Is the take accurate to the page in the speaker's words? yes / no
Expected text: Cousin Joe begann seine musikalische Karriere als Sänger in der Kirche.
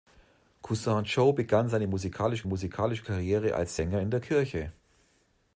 no